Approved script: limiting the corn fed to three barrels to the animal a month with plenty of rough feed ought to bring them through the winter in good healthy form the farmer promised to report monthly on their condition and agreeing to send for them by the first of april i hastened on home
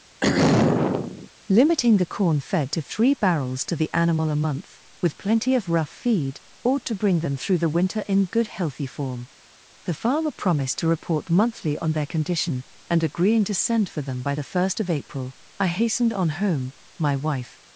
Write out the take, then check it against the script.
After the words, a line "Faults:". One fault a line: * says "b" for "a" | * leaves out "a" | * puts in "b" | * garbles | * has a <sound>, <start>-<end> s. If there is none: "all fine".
limiting the corn fed to three barrels to the animal a month with plenty of rough feed ought to bring them through the winter in good healthy form the farmer promised to report monthly on their condition and agreeing to send for them by the first of april i hastened on home my wife
Faults:
* has a throat clearing, 0.2-1.3 s
* puts in "my wife"